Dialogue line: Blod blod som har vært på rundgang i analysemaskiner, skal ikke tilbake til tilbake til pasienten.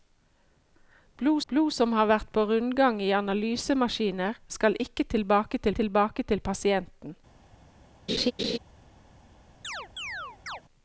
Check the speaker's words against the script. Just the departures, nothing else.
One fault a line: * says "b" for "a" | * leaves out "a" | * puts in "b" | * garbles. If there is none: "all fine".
all fine